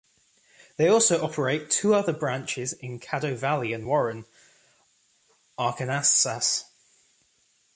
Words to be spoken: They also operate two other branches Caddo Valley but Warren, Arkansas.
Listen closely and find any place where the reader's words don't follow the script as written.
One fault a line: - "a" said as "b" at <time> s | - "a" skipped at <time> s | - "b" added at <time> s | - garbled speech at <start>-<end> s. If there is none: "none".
- "in" added at 2.7 s
- "but" said as "and" at 3.7 s